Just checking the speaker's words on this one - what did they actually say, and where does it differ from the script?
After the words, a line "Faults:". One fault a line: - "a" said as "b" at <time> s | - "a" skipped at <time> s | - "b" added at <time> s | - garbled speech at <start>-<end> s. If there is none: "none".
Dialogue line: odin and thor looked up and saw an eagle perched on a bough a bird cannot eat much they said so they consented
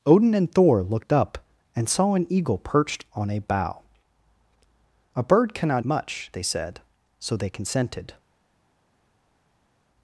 odin and thor looked up and saw an eagle perched on a bough a bird cannot much they said so they consented
Faults:
- "eat" skipped at 5.8 s